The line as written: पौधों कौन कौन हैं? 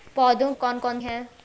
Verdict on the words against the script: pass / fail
pass